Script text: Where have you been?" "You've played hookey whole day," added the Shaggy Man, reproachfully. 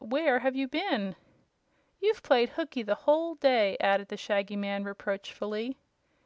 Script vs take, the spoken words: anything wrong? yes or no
yes